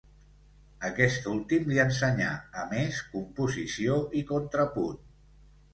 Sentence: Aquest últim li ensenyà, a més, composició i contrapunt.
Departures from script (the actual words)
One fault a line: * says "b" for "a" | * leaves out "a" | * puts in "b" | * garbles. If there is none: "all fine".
all fine